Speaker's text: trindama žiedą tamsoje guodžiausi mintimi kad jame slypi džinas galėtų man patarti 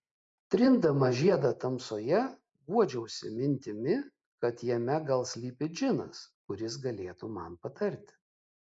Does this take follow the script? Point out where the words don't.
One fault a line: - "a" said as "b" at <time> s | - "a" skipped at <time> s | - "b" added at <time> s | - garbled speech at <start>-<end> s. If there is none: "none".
- "gal" added at 5.1 s
- "kuris" added at 6.5 s